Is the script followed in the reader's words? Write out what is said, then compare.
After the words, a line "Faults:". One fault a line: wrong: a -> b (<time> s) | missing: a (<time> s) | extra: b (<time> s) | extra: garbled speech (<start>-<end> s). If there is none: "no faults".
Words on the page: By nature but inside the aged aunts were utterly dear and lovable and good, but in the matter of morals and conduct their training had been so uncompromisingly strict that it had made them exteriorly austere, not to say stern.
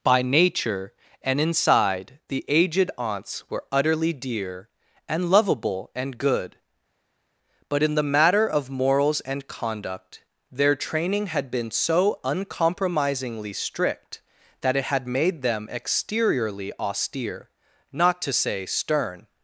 By nature and inside the aged aunts were utterly dear and lovable and good, but in the matter of morals and conduct their training had been so uncompromisingly strict that it had made them exteriorly austere, not to say stern.
Faults:
wrong: but -> and (1.2 s)